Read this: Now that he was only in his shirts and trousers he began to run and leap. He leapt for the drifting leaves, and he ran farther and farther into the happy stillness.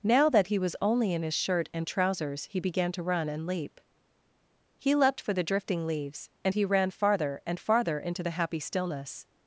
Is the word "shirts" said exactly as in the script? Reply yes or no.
no